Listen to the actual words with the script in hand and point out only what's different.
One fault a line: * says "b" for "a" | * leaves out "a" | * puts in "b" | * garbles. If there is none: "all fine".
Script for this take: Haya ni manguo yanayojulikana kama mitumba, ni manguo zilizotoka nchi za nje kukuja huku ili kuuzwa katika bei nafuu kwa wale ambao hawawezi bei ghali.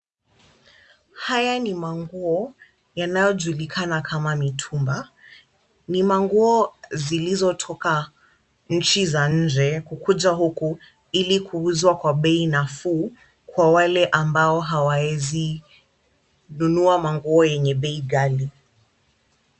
* says "kwa" for "katika"
* puts in "nunua manguo yenye"